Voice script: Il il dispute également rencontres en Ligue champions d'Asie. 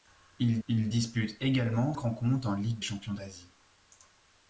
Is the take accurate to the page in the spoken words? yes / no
yes